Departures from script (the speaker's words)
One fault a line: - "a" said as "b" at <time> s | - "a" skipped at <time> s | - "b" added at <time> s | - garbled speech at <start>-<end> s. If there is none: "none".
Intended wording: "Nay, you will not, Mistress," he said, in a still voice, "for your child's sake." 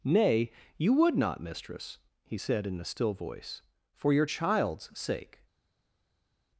- "will" said as "would" at 0.9 s